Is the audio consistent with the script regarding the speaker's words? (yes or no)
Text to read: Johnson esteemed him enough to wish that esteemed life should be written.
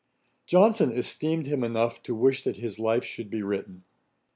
no